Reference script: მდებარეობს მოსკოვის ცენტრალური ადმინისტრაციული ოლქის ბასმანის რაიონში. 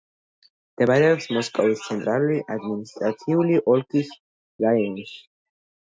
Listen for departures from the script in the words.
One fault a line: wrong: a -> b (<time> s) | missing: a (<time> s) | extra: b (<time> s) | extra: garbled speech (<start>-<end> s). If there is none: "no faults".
missing: ბასმანის (4.1 s)